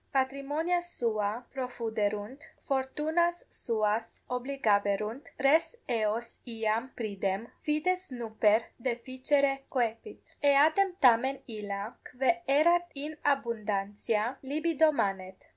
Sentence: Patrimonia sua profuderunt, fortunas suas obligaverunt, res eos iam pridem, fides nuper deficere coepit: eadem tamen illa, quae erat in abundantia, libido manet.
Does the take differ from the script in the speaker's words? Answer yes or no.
no